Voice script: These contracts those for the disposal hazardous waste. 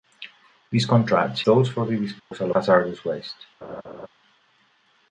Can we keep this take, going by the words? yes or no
yes